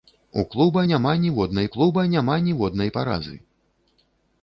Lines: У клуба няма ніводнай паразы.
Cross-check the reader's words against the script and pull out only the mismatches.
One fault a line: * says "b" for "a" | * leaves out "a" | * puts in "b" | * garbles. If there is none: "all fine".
* puts in "клуба няма ніводнай"